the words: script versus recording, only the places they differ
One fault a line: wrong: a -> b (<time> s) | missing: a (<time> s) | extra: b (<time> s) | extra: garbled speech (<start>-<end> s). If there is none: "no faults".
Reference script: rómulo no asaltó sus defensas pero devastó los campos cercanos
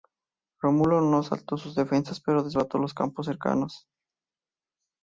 no faults